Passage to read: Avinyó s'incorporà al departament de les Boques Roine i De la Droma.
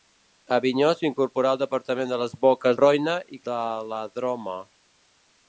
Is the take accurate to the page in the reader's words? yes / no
yes